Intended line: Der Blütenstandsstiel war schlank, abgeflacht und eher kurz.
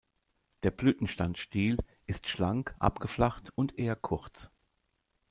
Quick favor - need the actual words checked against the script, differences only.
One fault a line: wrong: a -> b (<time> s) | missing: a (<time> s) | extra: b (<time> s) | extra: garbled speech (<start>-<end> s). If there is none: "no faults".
wrong: war -> ist (2.1 s)